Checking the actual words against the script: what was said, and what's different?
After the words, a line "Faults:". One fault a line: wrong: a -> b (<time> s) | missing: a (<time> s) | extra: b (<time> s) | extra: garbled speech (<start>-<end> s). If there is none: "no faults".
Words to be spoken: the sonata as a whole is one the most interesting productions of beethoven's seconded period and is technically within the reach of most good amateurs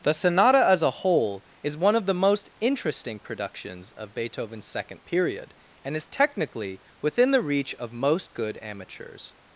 the sonata as a whole is one of the most interesting productions of beethoven's second period and is technically within the reach of most good amateurs
Faults:
extra: of (1.9 s)
wrong: seconded -> second (4.7 s)